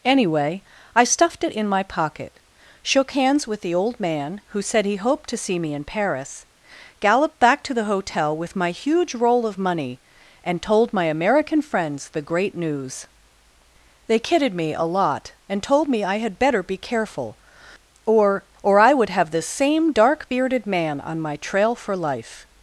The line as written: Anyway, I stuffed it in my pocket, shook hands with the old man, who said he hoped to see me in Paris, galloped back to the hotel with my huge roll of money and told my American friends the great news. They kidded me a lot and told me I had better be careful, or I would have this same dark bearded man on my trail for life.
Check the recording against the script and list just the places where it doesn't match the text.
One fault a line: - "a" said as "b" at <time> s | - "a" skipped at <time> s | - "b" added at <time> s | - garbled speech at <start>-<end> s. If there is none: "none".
- "or" added at 18.6 s